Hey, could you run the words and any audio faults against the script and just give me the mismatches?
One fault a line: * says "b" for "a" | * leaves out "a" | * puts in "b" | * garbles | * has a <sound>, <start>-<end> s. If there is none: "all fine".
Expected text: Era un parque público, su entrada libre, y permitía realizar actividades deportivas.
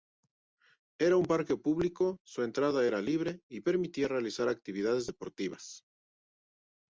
* puts in "era"